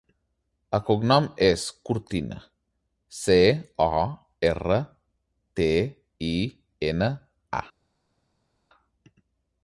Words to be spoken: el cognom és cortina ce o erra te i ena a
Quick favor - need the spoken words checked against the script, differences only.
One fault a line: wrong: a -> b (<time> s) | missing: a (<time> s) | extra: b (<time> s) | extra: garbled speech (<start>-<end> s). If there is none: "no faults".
no faults